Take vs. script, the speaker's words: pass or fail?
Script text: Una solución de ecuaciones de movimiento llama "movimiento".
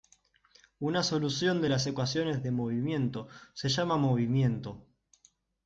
fail